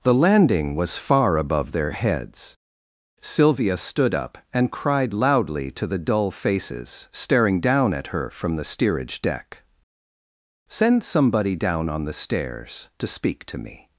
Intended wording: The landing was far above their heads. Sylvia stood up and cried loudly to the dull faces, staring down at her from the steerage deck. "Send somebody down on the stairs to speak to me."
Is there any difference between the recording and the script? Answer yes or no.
no